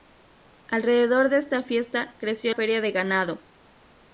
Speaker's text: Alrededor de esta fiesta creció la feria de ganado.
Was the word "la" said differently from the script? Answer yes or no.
yes